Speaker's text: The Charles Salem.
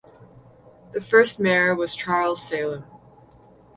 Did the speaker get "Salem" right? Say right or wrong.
right